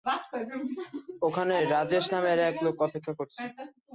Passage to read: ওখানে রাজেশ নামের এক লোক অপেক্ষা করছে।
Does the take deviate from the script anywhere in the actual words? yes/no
no